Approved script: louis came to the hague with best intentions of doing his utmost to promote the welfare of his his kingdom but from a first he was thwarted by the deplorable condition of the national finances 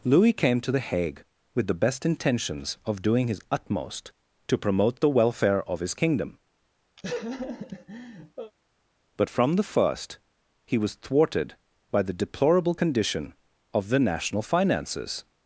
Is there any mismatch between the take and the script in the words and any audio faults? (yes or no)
yes